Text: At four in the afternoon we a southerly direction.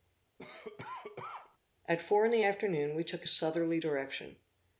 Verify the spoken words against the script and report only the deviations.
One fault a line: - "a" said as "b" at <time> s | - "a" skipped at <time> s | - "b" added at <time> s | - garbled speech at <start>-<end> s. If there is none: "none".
- "took" added at 3.0 s